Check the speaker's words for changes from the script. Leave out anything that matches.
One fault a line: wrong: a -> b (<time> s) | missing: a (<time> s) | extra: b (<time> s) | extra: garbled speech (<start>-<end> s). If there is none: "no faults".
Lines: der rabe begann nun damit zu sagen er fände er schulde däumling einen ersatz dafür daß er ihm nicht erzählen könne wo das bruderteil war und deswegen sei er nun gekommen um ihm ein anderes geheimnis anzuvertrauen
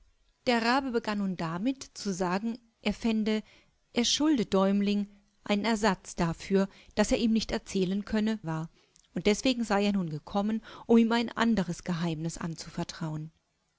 missing: wo das bruderteil (8.4 s)